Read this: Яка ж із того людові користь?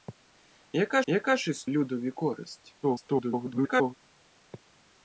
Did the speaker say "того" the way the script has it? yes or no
no